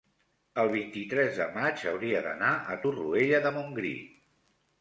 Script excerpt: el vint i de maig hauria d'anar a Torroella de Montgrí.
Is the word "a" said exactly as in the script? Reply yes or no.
yes